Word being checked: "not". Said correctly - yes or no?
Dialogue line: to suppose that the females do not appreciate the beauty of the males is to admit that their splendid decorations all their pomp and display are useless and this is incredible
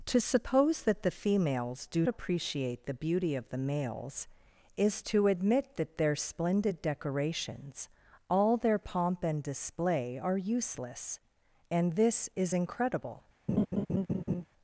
no